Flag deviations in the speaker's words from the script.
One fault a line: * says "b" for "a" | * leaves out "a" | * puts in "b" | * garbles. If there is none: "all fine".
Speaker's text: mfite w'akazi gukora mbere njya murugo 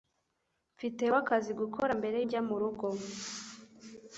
all fine